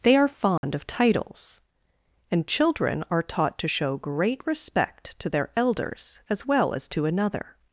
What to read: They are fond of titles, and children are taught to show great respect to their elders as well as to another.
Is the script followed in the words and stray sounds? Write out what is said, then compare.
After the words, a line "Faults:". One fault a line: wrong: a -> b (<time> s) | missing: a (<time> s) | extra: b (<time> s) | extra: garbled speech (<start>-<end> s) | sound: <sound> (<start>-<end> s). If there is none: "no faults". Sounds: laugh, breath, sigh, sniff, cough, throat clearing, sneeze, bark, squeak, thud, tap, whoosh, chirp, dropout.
They are fond of titles, and children are taught to show great respect to their elders as well as to another.
Faults:
sound: dropout (0.6-0.6 s)